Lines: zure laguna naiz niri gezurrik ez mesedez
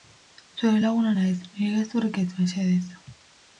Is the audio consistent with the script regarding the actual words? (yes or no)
yes